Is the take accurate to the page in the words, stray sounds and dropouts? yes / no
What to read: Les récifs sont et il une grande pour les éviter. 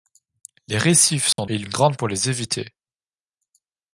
no